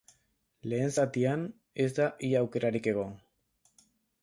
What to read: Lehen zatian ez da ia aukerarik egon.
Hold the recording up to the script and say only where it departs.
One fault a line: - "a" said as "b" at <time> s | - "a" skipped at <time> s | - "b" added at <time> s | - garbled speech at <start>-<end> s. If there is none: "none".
none